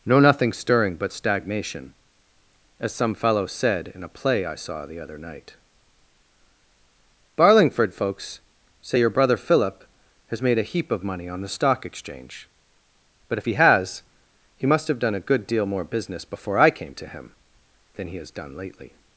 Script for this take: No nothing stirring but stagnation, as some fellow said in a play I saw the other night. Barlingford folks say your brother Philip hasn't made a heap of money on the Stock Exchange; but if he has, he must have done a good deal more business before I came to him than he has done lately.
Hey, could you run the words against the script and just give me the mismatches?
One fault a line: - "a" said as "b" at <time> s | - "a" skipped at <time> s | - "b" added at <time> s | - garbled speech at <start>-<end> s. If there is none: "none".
- "hasn't" said as "has" at 10.3 s